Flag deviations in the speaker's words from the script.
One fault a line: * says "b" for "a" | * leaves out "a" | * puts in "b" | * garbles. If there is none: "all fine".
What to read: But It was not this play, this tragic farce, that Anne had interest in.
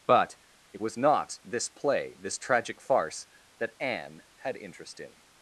all fine